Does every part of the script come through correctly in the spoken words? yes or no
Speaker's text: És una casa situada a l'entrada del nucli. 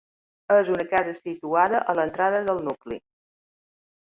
yes